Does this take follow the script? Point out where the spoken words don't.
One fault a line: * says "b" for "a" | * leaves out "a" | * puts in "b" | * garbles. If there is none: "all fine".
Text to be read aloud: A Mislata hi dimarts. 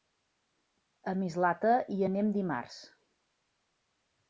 * puts in "anem"